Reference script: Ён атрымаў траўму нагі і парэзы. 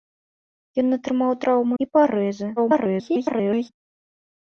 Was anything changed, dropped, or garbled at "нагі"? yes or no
yes